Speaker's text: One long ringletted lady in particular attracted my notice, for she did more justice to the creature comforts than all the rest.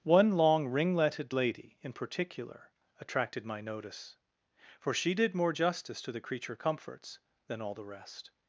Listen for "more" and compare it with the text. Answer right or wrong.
right